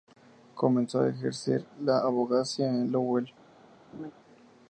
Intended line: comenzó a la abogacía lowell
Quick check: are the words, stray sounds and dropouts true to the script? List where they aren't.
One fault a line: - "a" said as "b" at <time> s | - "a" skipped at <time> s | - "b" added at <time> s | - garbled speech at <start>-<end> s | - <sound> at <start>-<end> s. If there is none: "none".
- "ejercer" added at 1.1 s
- "en" added at 2.7 s
- laugh at 3.9-4.1 s